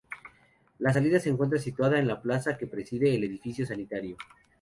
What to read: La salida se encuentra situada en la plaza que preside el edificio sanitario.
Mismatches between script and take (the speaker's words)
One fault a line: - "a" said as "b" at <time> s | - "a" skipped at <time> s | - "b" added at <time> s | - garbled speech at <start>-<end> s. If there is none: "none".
none